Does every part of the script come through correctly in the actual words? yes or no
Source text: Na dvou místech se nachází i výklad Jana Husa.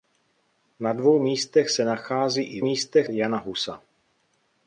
no